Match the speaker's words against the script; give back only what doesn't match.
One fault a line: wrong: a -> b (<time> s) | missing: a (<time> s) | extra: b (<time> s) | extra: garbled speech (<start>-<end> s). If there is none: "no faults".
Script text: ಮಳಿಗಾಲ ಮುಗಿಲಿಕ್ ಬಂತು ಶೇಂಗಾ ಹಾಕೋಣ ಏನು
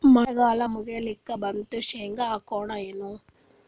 no faults